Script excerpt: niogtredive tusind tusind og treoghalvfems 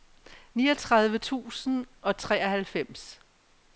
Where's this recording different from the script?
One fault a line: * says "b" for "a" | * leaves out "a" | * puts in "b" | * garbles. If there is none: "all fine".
* leaves out "tusind"